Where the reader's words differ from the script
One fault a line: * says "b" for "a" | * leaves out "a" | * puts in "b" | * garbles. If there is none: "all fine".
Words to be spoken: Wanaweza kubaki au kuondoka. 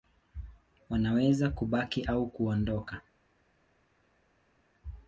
all fine